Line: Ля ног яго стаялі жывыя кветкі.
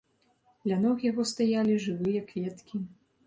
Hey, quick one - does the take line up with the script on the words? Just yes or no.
yes